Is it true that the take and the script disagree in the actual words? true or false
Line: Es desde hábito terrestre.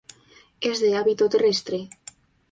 true